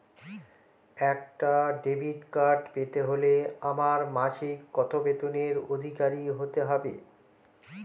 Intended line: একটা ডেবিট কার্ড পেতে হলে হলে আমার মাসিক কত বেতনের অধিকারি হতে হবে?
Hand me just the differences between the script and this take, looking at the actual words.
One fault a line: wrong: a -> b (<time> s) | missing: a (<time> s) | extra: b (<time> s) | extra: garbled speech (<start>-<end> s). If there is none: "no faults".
missing: হলে (3.3 s)